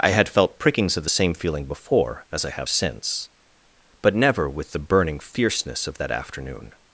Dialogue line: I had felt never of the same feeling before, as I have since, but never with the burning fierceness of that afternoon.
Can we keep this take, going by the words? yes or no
no